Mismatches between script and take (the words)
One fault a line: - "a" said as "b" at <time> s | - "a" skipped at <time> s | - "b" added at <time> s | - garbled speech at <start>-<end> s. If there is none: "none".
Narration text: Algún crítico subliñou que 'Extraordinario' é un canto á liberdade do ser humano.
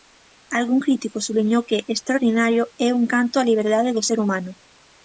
none